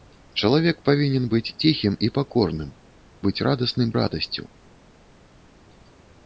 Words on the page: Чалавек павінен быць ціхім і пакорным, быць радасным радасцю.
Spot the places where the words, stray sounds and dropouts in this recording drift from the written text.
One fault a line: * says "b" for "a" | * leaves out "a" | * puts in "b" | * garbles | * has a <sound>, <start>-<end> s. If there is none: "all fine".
all fine